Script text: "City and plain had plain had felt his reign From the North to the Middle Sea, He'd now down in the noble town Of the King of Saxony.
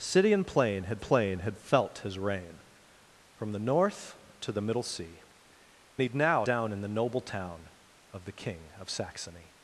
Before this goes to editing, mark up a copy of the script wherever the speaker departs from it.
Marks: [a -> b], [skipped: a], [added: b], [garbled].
"City and plain had plain had felt his reign From the North to the Middle Sea, He'd now down in the noble town Of the King of Saxony.